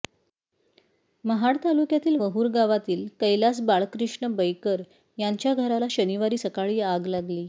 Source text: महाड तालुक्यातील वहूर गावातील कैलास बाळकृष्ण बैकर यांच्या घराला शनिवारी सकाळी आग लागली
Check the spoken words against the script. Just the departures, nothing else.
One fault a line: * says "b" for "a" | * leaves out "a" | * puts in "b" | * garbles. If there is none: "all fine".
all fine